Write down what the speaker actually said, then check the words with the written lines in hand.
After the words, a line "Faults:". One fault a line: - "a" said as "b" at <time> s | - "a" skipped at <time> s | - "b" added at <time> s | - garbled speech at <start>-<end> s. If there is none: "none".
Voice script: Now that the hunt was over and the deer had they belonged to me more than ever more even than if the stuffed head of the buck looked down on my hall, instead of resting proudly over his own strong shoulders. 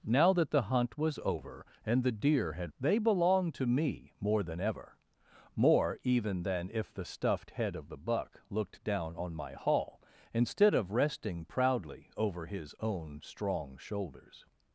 Now that the hunt was over and the deer had they belonged to me more than ever more even than if the stuffed head of the buck looked down on my hall, instead of resting proudly over his own strong shoulders.
Faults:
none